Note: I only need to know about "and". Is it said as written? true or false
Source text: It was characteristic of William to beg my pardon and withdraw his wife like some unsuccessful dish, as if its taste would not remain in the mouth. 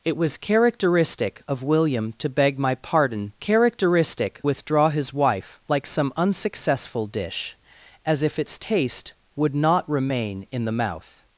false